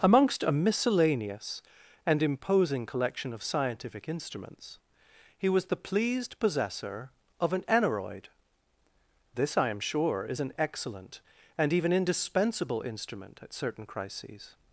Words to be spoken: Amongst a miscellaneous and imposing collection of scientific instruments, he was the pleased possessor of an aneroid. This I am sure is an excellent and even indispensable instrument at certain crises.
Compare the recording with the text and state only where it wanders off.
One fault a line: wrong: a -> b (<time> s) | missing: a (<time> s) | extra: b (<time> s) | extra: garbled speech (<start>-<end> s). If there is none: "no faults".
no faults